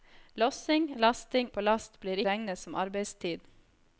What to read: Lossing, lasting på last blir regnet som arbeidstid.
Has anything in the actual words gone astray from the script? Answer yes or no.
no